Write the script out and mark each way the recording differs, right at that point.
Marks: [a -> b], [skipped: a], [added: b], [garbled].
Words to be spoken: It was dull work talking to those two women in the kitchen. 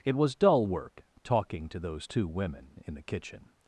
It was dull work talking to those two women in the kitchen.